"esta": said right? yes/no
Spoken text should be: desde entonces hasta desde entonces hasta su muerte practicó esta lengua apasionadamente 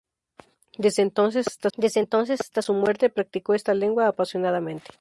yes